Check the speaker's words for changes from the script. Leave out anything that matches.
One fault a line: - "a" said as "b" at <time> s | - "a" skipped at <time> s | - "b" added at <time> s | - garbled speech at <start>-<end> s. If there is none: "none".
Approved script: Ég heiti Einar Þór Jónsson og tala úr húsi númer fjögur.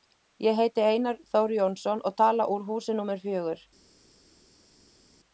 none